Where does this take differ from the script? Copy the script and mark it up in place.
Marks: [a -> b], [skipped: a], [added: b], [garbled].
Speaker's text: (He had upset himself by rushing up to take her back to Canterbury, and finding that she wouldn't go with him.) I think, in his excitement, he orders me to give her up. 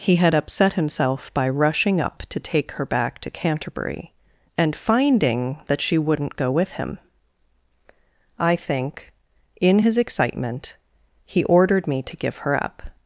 (He had upset himself by rushing up to take her back to Canterbury, and finding that she wouldn't go with him.) I think, in his excitement, he [orders -> ordered] me to give her up.